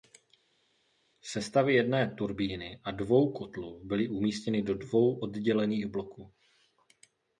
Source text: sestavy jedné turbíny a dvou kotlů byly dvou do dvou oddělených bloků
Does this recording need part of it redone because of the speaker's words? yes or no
yes